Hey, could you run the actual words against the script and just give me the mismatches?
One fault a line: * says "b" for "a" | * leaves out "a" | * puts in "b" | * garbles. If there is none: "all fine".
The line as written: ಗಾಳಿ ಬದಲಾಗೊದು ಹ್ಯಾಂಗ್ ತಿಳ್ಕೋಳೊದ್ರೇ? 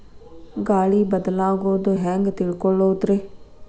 all fine